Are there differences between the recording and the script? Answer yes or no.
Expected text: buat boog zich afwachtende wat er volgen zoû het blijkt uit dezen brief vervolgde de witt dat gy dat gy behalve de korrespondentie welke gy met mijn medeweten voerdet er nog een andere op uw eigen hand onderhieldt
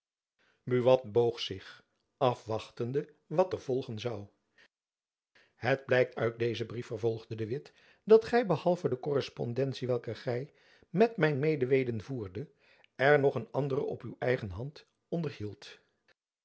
yes